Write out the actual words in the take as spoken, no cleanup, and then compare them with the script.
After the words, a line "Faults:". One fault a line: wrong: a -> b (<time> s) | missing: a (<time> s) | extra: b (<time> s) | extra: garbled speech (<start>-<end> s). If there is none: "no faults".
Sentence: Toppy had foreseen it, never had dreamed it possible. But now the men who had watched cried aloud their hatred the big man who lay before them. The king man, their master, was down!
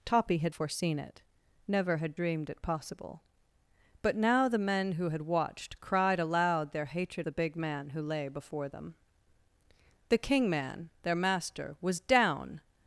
Toppy had foreseen it, never had dreamed it possible. But now the men who had watched cried aloud their hatred the big man who lay before them. The king man, their master, was down!
Faults:
no faults